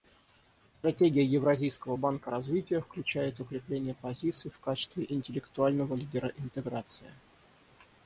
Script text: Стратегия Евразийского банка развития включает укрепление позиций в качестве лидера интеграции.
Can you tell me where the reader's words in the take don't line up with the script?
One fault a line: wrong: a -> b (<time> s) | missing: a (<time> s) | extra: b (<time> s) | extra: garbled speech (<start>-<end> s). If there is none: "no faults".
extra: интеллектуального (5.1 s)